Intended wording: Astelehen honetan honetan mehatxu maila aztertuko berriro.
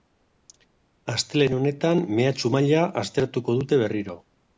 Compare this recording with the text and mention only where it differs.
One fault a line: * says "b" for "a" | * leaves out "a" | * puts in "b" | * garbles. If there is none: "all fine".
* leaves out "honetan"
* puts in "dute"